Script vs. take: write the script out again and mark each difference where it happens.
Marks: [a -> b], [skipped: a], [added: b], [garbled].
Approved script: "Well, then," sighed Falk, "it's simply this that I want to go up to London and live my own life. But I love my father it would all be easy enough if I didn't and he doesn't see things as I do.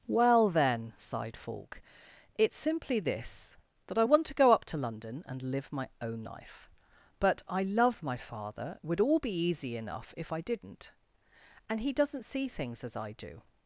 "Well, then," sighed Falk, "it's simply this that I want to go up to London and live my own life. But I love my father it would all be easy enough if I didn't and he doesn't see things as I do.